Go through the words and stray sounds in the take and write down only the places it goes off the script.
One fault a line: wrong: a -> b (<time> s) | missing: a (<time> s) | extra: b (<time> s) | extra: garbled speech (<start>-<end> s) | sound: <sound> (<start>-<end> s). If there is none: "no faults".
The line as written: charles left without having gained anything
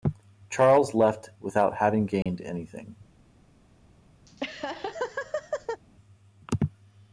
sound: dropout (2.2-2.3 s)
sound: laugh (4.3-5.8 s)